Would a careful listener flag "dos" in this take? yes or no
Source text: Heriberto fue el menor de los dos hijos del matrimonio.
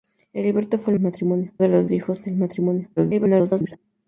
yes